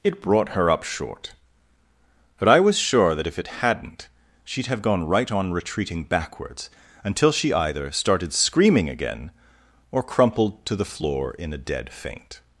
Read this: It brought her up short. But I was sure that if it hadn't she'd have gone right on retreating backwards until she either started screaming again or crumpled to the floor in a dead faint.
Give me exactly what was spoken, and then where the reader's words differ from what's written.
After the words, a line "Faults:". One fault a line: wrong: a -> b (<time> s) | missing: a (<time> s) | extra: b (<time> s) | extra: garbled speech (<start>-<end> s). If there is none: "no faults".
It brought her up short. But I was sure that if it hadn't she'd have gone right on retreating backwards until she either started screaming again or crumpled to the floor in a dead faint.
Faults:
no faults